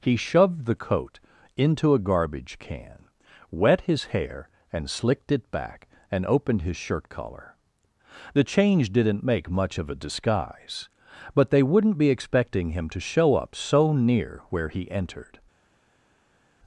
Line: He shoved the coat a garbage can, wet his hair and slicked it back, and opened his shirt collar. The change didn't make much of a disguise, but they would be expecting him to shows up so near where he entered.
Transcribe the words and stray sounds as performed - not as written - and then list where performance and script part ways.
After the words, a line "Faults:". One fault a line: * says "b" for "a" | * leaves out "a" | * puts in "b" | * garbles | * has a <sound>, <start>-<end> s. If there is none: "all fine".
He shoved the coat into a garbage can, wet his hair and slicked it back, and opened his shirt collar. The change didn't make much of a disguise, but they wouldn't be expecting him to show up so near where he entered.
Faults:
* puts in "into"
* says "wouldn't" for "would"
* says "show" for "shows"